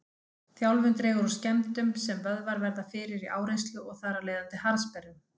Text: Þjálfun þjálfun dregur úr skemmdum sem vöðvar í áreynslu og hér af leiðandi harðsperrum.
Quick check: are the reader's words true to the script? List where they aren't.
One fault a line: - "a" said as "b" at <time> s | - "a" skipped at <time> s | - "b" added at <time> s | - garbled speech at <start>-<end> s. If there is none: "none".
- "þjálfun" skipped at 0.9 s
- "verða fyrir" added at 2.6 s
- "hér" said as "þar" at 4.0 s